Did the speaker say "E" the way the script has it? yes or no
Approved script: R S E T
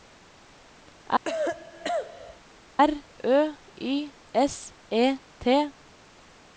yes